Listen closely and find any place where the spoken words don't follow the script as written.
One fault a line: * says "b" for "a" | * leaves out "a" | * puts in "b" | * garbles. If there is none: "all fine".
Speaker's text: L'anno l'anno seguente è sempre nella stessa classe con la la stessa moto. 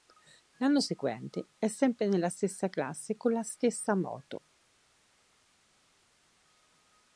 * leaves out "l'anno"
* leaves out "la"